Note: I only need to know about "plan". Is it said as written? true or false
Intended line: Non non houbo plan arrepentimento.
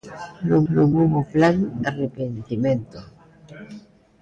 true